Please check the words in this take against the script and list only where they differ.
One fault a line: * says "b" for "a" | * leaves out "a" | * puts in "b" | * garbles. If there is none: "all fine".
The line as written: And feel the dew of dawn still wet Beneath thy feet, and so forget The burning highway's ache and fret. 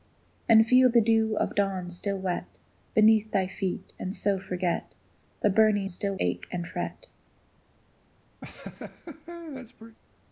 * says "still" for "highway's"